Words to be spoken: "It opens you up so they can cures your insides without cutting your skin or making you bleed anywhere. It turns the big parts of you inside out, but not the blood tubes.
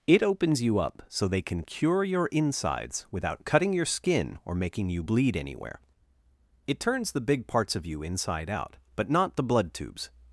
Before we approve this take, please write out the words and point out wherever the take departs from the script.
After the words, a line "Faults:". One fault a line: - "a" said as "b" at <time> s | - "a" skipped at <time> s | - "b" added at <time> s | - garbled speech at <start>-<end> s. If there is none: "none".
"It opens you up so they can cure your insides without cutting your skin or making you bleed anywhere. It turns the big parts of you inside out, but not the blood tubes.
Faults:
- "cures" said as "cure" at 1.6 s